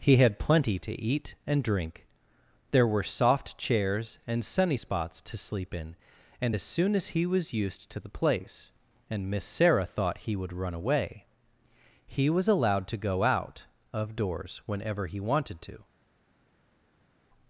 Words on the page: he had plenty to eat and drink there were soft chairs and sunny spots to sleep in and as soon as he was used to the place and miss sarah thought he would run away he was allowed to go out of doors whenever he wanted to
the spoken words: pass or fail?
pass